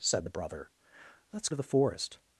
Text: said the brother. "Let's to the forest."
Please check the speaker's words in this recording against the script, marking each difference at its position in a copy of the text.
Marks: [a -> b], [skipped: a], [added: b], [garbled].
said the brother. "Let's to the forest."